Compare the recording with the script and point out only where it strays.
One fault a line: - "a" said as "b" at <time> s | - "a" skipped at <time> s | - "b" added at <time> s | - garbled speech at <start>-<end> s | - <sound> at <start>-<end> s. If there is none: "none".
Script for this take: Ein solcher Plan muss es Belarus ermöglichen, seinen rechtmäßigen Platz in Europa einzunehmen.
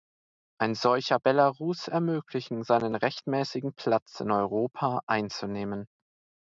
- "Plan muss es" skipped at 1.2 s